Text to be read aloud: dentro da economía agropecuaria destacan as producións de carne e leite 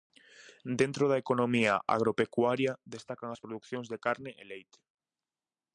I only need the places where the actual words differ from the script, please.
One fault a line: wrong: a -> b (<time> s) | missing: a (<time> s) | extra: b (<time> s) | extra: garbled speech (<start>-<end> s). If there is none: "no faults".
no faults